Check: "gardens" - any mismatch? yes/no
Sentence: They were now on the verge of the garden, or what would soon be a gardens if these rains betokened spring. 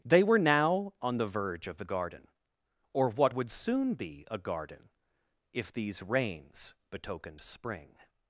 yes